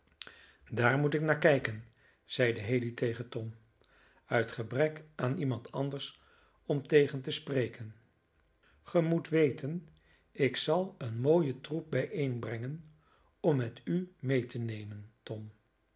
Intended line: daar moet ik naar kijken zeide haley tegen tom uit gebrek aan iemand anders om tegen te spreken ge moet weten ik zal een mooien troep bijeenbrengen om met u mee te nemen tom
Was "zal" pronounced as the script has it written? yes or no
yes